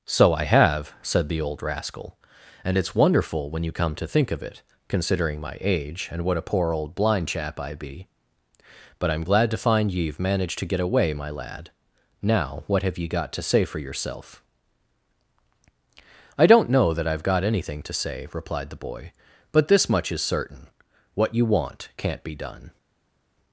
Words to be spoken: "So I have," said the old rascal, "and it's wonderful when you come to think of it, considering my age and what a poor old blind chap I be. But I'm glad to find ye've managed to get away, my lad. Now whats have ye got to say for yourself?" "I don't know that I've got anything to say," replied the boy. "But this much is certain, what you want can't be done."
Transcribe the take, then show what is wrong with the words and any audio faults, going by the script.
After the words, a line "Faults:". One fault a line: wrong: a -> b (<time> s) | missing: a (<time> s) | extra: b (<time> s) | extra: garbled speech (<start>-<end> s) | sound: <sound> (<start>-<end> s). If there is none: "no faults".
"So I have," said the old rascal, "and it's wonderful when you come to think of it, considering my age and what a poor old blind chap I be. But I'm glad to find ye've managed to get away, my lad. Now what have ye got to say for yourself?" "I don't know that I've got anything to say," replied the boy. "But this much is certain, what you want can't be done."
Faults:
wrong: whats -> what (12.7 s)